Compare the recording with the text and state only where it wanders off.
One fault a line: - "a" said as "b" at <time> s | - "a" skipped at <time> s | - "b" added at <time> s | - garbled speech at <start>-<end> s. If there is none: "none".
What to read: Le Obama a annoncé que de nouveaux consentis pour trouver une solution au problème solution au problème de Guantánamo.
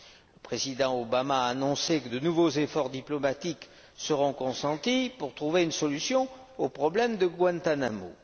- "président" added at 0.4 s
- "efforts diplomatiques seront" added at 2.5 s
- "solution au problème" skipped at 7.2 s